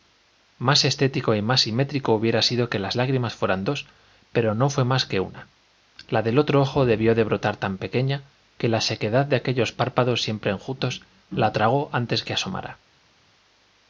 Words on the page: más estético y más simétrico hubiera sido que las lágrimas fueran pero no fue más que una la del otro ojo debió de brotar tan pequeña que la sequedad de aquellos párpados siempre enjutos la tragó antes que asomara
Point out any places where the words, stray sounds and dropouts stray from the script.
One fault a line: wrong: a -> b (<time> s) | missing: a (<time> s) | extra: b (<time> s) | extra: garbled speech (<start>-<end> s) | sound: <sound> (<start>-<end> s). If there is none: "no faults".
extra: dos (3.6 s)